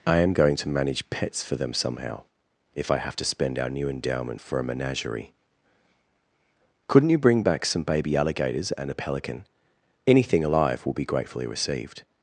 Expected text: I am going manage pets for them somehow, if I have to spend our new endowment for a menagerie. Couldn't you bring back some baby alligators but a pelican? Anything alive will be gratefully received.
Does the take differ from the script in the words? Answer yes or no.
yes